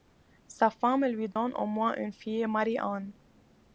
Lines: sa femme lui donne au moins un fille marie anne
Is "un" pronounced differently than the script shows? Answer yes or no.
yes